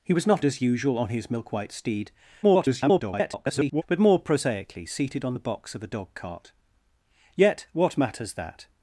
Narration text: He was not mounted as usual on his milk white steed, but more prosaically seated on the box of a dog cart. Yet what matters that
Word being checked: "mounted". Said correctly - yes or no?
no